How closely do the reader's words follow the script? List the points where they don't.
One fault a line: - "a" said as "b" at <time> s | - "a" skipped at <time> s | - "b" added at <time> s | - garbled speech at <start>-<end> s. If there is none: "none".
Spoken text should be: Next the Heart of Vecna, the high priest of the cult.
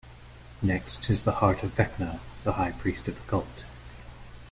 - "is" added at 1.1 s